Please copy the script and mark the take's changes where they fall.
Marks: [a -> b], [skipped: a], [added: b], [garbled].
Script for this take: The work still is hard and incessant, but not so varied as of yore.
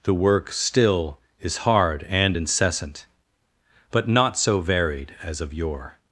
The work still is hard and incessant, but not so varied as of yore.